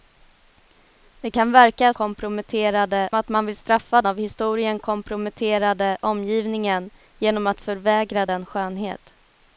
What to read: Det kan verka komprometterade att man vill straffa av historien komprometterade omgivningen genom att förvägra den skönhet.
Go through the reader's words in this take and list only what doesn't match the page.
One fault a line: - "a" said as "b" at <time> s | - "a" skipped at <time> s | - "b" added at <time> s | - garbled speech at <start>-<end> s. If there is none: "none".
none